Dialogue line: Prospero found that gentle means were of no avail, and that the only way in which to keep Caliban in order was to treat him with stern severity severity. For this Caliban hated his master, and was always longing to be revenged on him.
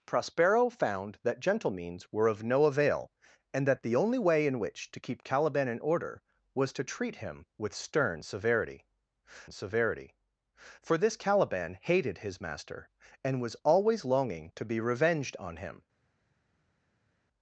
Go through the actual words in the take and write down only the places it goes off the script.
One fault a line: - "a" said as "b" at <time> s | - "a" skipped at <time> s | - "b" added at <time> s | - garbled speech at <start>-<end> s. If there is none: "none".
none